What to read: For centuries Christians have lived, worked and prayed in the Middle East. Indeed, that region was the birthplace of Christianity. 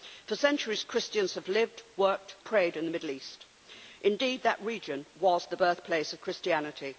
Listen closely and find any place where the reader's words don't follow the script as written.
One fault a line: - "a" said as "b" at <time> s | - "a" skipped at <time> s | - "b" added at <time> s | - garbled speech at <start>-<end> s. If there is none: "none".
- "and" skipped at 2.4 s